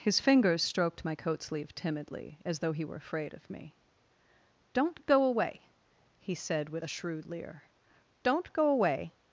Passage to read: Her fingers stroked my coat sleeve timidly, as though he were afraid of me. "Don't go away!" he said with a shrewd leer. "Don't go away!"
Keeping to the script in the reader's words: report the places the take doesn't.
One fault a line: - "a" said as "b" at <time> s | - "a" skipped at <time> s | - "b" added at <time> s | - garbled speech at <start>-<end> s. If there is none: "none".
- "Her" said as "His" at 0.0 s